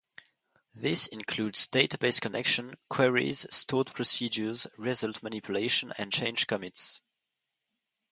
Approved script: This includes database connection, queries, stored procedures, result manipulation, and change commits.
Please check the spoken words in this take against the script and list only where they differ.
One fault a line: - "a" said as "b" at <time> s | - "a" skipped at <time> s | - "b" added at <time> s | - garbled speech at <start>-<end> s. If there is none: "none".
none